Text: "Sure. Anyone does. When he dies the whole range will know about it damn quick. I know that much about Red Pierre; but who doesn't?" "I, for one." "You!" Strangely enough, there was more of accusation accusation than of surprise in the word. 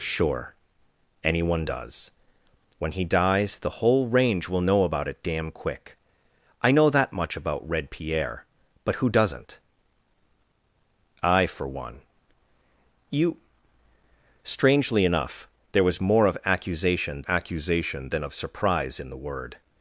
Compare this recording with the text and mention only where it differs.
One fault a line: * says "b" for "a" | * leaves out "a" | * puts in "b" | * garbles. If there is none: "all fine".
all fine